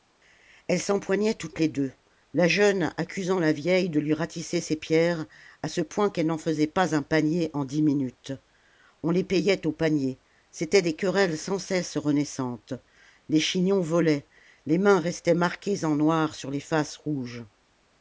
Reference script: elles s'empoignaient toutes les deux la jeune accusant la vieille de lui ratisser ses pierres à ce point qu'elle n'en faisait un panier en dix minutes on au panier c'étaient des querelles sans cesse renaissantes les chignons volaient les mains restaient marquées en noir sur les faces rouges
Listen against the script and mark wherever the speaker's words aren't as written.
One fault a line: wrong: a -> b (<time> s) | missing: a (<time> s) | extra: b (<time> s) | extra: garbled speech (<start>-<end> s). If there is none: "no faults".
extra: pas (6.7 s)
extra: les payait (9.1 s)